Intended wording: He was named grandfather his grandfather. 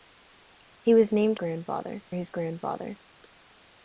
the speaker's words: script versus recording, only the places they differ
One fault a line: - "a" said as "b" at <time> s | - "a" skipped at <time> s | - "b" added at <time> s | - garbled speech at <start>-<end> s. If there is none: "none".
none